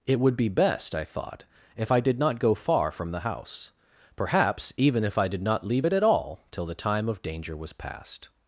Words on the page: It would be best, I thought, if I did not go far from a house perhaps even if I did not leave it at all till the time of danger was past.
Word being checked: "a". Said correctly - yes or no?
no